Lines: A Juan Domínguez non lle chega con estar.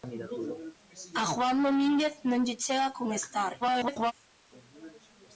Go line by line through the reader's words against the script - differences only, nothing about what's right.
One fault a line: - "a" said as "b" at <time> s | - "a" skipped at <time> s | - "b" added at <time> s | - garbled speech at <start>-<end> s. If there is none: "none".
- garbled speech at 3.6-4.1 s